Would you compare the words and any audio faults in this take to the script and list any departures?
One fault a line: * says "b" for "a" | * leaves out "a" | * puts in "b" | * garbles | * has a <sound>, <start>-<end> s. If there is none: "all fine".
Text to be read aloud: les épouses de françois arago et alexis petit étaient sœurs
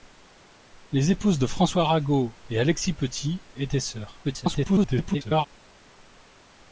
* garbles